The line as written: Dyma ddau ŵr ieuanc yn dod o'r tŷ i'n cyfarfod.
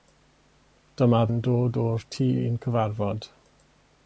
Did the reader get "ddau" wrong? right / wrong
wrong